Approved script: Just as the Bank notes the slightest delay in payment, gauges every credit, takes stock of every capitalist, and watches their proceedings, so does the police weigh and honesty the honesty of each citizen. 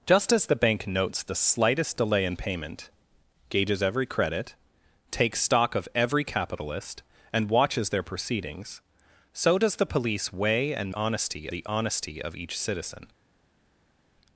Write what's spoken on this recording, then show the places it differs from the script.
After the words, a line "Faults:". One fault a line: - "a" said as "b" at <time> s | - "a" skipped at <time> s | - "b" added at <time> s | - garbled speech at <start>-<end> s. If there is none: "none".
Just as the Bank notes the slightest delay in payment, gauges every credit, takes stock of every capitalist, and watches their proceedings, so does the police weigh and honesty the honesty of each citizen.
Faults:
none